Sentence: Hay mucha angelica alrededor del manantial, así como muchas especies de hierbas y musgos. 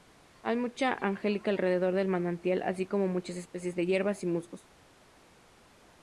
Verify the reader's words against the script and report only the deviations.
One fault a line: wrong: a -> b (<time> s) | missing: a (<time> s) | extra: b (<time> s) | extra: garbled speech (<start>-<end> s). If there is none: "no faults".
no faults